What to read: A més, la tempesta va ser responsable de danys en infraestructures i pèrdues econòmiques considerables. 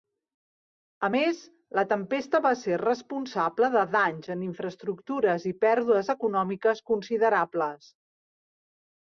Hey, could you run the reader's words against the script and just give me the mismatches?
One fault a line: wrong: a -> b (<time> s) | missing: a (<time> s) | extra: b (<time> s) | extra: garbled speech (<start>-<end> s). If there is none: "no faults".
no faults